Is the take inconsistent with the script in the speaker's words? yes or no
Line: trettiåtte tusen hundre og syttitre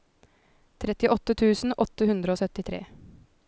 yes